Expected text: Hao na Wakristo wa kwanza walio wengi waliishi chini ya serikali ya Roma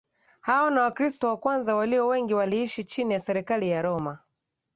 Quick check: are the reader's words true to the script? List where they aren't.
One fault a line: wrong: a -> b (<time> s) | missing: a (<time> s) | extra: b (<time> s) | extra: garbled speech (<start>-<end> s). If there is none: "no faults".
no faults